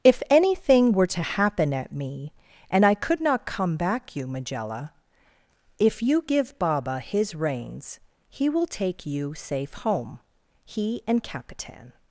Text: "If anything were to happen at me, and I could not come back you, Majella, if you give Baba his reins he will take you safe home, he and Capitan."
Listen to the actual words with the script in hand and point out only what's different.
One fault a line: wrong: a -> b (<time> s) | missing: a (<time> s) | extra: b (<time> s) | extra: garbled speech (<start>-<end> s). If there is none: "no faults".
no faults